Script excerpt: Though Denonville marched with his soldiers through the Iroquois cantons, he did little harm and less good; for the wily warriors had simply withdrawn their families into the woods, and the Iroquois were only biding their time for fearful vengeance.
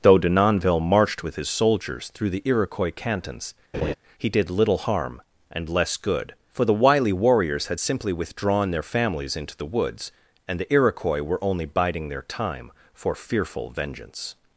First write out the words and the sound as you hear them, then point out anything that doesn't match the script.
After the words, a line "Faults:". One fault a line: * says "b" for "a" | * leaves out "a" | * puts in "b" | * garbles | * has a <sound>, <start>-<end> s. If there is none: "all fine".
Though Denonville marched with his soldiers through the Iroquois cantons, he did little harm and less good; for the wily warriors had simply withdrawn their families into the woods, and the Iroquois were only biding their time for fearful vengeance.
Faults:
* has a laugh, 3.7-3.9 s